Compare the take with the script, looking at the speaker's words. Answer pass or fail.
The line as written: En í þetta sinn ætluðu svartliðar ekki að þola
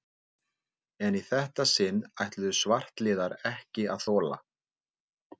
pass